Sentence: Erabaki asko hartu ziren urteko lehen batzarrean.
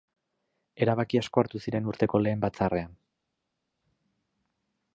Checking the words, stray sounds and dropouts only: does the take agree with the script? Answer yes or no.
yes